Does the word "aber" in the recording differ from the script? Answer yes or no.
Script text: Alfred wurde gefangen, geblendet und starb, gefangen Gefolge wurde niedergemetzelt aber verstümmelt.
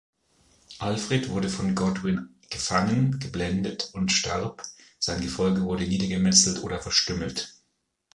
yes